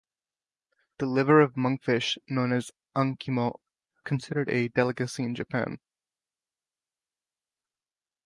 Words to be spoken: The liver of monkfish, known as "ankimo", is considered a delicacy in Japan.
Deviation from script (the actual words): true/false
true